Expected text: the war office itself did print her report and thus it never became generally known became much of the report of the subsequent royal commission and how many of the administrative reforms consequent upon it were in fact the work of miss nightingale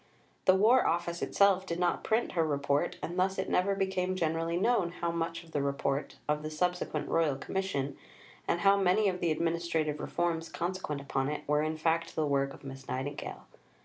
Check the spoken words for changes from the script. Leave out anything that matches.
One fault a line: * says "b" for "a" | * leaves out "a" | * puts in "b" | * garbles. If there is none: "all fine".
* puts in "not"
* says "how" for "became"